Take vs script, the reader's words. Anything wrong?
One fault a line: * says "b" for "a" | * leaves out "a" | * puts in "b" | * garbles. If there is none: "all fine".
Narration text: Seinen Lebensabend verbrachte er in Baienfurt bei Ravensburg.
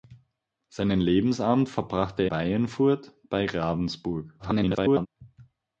* leaves out "in"
* garbles